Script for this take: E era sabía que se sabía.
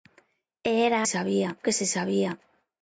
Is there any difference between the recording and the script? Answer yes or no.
no